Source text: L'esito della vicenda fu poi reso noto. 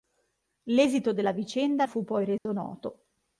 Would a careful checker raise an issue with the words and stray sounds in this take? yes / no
yes